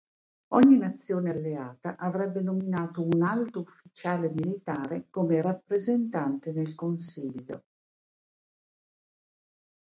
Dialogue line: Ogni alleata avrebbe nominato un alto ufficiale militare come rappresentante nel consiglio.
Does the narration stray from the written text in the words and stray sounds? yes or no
yes